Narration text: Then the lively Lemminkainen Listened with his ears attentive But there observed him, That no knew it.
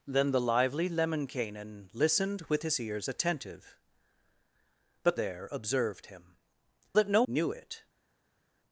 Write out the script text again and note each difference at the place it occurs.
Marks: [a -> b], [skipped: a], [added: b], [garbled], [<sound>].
Then the lively Lemminkainen Listened with his ears attentive But there observed him, That no knew it.